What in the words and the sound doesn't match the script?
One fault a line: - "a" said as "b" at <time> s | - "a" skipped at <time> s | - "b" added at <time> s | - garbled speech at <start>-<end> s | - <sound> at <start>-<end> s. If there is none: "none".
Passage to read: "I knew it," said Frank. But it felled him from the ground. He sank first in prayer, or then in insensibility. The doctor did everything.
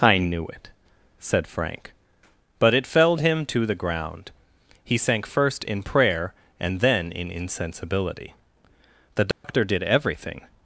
- "from" said as "to" at 3.5 s
- "or" said as "and" at 6.6 s
- dropout at 9.3-9.4 s